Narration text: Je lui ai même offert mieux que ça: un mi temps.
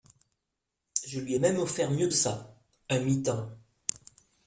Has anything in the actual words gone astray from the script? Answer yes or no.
yes